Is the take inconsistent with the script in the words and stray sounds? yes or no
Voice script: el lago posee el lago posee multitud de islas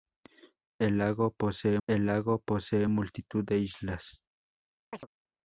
yes